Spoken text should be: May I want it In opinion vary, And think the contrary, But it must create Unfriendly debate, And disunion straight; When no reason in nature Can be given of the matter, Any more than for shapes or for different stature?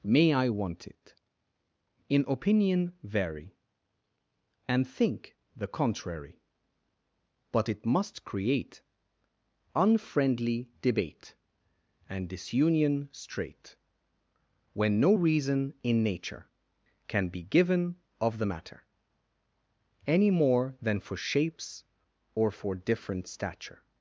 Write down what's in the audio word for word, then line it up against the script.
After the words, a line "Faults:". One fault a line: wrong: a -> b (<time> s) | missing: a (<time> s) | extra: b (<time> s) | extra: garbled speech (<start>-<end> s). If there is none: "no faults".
May I want it In opinion vary, And think the contrary, But it must create Unfriendly debate, And disunion straight; When no reason in nature Can be given of the matter, Any more than for shapes or for different stature?
Faults:
no faults